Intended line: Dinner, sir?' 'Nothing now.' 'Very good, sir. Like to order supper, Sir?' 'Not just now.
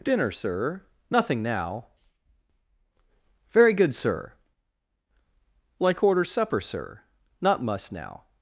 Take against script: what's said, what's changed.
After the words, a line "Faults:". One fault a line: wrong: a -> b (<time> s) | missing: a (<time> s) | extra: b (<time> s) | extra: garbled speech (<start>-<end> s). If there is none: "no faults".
Dinner, sir?' 'Nothing now.' 'Very good, sir. Like order supper, Sir?' 'Not must now.
Faults:
missing: to (6.0 s)
wrong: just -> must (7.6 s)